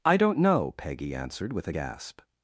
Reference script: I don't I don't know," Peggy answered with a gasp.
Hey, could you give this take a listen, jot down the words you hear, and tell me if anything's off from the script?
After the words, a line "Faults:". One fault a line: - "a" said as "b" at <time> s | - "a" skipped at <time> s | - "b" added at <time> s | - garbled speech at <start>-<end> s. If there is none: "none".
I don't know," Peggy answered with a gasp.
Faults:
- "I don't" skipped at 0.4 s